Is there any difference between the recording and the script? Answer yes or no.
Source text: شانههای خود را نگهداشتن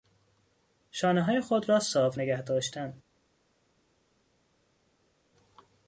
yes